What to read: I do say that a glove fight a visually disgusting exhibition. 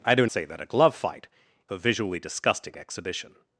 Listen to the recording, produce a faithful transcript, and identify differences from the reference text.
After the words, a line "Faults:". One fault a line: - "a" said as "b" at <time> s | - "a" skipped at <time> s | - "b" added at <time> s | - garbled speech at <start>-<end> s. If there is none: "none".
I do say that a glove fight a visually disgusting exhibition.
Faults:
none